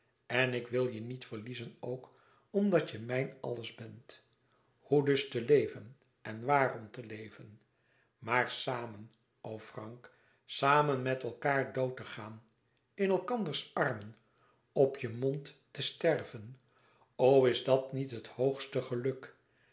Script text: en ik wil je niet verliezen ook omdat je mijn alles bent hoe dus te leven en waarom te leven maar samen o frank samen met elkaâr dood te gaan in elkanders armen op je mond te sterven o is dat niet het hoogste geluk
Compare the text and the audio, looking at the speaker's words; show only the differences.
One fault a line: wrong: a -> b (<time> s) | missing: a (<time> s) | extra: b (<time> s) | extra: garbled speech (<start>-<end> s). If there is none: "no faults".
no faults